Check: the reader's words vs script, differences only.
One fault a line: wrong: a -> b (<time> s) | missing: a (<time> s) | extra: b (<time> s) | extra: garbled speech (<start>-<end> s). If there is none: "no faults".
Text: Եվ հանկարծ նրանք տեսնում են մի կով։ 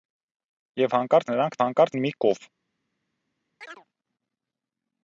wrong: տեսնում -> հանկարծ (1.6 s)